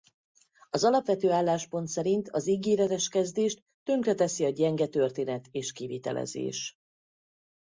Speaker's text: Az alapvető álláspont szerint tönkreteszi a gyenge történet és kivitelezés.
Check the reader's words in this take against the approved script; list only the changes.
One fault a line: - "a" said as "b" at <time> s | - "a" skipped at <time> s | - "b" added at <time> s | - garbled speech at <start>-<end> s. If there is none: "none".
- "az ígéretes kezdést" added at 2.3 s